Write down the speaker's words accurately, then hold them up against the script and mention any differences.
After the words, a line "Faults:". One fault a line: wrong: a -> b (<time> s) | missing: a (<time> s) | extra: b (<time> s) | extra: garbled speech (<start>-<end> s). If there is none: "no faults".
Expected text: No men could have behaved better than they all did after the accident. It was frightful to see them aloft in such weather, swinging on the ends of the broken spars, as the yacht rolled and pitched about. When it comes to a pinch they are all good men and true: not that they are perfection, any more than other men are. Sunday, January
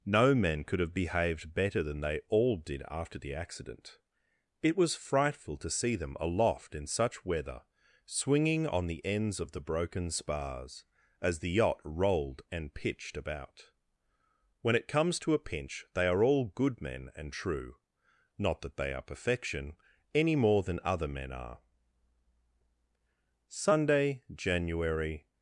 No men could have behaved better than they all did after the accident. It was frightful to see them aloft in such weather, swinging on the ends of the broken spars, as the yacht rolled and pitched about. When it comes to a pinch they are all good men and true: not that they are perfection, any more than other men are. Sunday, January
Faults:
no faults